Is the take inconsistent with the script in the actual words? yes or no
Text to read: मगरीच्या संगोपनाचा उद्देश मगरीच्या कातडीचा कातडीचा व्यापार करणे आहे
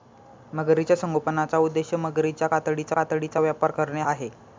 no